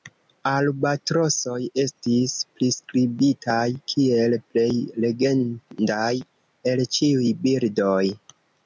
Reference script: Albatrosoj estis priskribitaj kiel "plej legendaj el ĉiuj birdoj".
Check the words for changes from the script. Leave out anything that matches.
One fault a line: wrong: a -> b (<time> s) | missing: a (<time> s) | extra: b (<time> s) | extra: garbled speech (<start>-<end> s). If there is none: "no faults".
no faults